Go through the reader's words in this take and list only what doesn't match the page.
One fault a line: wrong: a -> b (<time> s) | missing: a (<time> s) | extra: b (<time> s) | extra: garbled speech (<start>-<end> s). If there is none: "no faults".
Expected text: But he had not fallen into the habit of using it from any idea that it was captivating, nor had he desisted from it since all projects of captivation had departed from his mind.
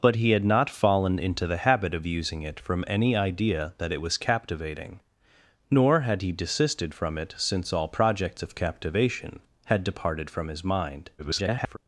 extra: garbled speech (11.2-11.8 s)